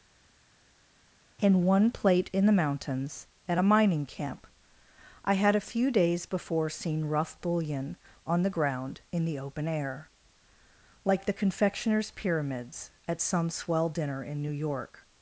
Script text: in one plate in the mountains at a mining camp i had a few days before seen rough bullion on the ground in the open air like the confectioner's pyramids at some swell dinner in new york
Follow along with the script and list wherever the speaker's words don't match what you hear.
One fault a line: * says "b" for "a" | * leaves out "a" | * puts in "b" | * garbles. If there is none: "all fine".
all fine